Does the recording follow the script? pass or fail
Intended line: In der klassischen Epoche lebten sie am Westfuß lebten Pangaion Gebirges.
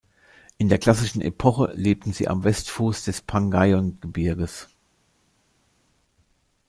fail